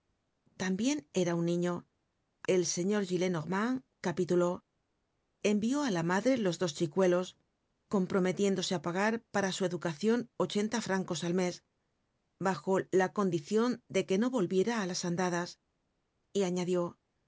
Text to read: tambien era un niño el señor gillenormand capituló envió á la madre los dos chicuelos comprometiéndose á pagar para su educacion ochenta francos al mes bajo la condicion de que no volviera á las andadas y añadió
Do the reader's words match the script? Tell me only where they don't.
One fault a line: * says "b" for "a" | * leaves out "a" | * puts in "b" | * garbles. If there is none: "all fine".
all fine